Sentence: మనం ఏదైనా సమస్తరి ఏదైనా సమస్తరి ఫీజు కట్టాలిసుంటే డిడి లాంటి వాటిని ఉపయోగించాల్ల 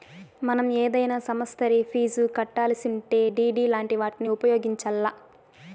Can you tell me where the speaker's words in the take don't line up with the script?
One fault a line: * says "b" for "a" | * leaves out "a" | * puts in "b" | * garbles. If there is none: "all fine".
* leaves out "ఏదైనా సమస్తరి"